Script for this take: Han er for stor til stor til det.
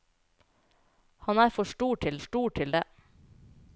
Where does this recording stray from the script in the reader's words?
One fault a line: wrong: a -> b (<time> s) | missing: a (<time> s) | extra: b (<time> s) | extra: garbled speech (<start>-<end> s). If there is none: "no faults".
no faults